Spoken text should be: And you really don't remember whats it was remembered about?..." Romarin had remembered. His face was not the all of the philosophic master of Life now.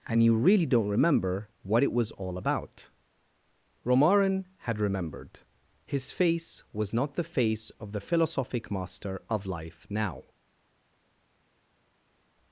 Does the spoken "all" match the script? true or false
false